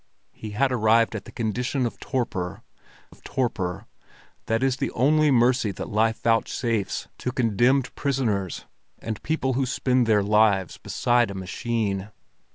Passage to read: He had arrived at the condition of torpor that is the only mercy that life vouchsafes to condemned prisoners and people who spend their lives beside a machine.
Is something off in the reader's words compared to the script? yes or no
yes